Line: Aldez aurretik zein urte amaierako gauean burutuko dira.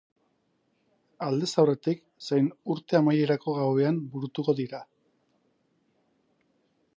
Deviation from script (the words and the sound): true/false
false